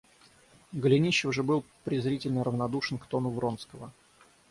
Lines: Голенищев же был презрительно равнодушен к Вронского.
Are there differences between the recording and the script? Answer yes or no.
yes